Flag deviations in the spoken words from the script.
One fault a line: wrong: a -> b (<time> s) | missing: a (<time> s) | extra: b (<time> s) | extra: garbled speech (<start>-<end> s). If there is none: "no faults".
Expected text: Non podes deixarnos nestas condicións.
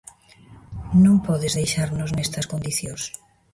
no faults